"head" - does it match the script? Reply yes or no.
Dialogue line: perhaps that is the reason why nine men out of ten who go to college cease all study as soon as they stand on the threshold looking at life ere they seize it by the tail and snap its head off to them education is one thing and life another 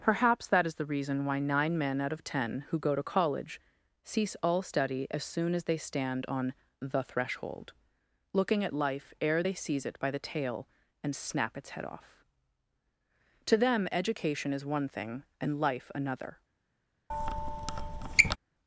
yes